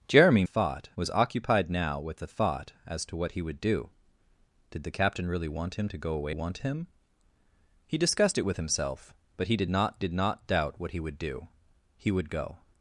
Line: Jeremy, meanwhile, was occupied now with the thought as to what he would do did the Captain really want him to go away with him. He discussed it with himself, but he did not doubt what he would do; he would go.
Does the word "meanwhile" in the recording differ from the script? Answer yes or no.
yes